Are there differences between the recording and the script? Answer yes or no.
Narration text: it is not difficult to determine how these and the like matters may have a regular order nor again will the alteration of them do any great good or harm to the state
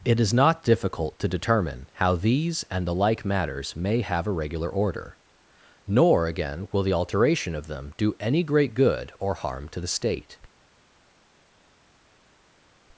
no